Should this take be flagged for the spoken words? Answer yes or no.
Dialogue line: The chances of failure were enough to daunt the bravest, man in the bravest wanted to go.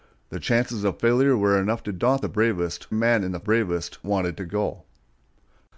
no